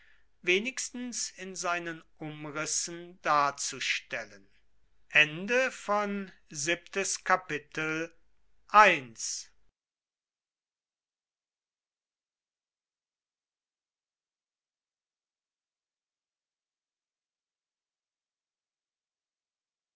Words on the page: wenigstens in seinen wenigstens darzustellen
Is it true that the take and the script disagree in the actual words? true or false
true